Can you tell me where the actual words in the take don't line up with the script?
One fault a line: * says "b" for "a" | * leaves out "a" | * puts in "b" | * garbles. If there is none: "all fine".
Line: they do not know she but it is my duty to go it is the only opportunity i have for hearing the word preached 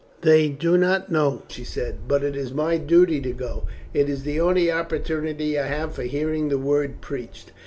* puts in "said"